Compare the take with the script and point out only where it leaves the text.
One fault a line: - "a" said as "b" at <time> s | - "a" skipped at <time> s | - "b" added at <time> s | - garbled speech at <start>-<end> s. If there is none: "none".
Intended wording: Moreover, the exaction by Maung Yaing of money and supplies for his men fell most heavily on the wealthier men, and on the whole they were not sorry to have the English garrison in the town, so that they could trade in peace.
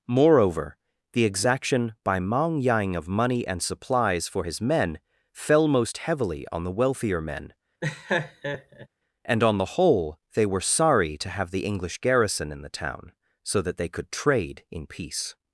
- "not" skipped at 10.6 s